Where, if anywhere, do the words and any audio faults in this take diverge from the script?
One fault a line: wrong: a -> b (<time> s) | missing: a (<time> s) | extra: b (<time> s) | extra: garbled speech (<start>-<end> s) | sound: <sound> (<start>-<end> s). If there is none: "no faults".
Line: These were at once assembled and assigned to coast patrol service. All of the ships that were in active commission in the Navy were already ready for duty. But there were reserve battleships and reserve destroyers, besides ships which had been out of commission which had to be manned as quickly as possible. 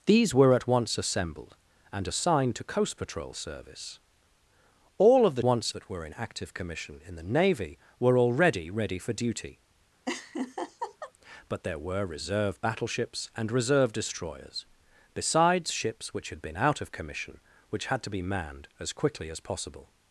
wrong: ships -> once (5.4 s)
sound: laugh (10.1-11.1 s)